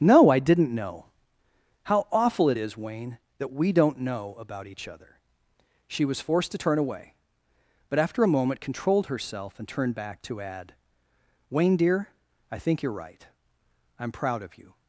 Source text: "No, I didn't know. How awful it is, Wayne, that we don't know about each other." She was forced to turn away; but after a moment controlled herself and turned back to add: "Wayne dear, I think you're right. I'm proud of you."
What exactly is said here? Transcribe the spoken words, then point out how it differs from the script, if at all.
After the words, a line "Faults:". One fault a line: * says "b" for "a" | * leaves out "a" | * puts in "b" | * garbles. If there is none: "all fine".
"No, I didn't know. How awful it is, Wayne, that we don't know about each other." She was forced to turn away; but after a moment controlled herself and turned back to add: "Wayne dear, I think you're right. I'm proud of you."
Faults:
all fine